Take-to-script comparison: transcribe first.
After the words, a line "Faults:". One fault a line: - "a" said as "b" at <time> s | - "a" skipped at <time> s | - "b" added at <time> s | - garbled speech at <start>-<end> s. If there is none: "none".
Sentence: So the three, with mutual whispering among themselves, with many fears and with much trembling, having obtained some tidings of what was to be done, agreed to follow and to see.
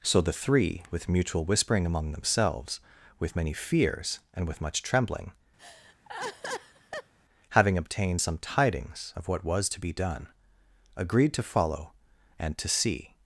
So the three, with mutual whispering among themselves, with many fears and with much trembling, having obtained some tidings of what was to be done, agreed to follow and to see.
Faults:
none